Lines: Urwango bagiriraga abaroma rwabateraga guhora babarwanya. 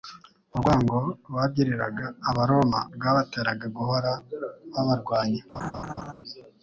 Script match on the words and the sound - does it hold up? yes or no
no